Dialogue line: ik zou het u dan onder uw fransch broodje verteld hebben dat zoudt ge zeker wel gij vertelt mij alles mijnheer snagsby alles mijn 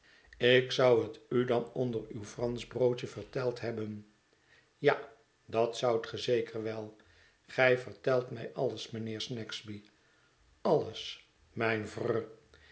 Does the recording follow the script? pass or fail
fail